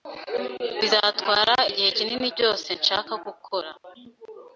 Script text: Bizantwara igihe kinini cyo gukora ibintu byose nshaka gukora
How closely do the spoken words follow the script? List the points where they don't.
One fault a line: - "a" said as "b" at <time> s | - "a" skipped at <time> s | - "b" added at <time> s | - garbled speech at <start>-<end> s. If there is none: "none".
- "cyo gukora ibintu" skipped at 2.3 s